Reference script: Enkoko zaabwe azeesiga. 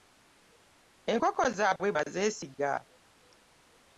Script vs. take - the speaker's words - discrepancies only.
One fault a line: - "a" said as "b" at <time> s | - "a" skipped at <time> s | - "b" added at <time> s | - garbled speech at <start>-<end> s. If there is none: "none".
none